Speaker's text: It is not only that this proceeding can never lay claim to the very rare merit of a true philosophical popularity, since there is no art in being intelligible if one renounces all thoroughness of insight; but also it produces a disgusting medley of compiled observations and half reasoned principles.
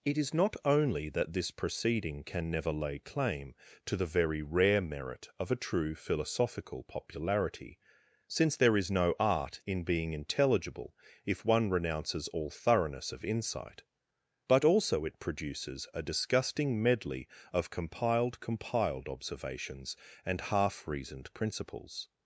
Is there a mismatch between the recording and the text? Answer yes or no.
yes